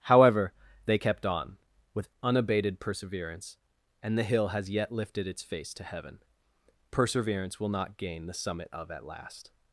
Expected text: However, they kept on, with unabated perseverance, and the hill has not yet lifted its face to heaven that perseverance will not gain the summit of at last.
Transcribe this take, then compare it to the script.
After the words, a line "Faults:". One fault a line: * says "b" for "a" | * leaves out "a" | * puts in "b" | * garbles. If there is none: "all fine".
However, they kept on, with unabated perseverance, and the hill has yet lifted its face to heaven perseverance will not gain the summit of at last.
Faults:
* leaves out "not"
* leaves out "that"